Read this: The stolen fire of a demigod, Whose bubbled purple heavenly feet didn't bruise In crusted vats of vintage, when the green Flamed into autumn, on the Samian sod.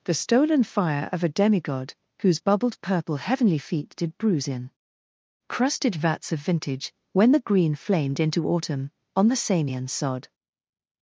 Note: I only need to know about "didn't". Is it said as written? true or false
false